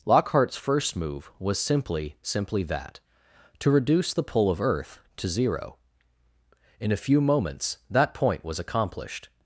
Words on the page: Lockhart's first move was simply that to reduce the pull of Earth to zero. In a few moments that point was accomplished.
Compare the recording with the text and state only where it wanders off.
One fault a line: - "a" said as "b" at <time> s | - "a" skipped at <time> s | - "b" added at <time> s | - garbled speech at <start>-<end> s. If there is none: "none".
- "simply" added at 2.2 s